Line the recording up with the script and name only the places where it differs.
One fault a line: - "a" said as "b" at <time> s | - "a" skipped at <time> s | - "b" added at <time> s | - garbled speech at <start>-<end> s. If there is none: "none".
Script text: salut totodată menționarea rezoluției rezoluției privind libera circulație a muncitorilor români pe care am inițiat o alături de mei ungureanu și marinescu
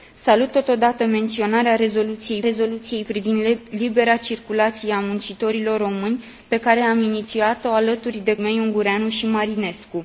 none